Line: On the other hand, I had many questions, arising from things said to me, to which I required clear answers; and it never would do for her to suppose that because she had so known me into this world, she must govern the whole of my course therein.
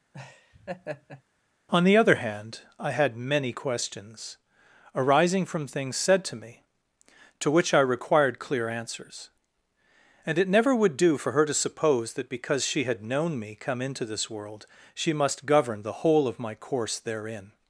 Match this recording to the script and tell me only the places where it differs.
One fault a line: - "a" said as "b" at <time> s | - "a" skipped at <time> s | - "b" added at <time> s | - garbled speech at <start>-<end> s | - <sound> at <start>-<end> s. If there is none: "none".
- laugh at 0.1-1.2 s
- "so" skipped at 13.0 s
- "come" added at 13.6 s